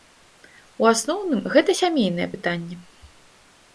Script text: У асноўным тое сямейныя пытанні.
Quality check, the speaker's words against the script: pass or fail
fail